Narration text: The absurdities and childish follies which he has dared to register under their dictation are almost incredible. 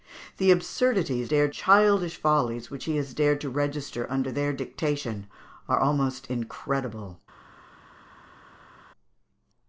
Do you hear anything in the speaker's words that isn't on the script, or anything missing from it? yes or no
yes